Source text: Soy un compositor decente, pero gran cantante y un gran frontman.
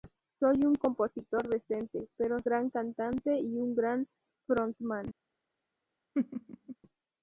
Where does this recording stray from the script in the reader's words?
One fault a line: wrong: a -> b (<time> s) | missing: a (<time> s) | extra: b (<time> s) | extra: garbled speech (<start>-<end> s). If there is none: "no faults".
no faults